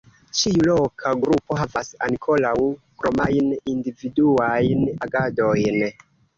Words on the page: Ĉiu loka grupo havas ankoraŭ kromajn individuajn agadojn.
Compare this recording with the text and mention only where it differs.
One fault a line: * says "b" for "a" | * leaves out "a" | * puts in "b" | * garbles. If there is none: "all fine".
all fine